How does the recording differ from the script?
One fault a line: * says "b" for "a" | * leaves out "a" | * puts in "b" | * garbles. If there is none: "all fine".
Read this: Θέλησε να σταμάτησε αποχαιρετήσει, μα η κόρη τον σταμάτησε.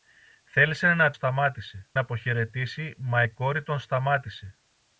all fine